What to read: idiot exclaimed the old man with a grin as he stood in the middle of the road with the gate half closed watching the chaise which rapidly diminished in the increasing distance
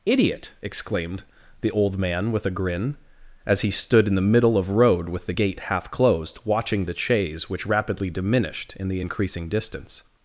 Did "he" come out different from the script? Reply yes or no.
no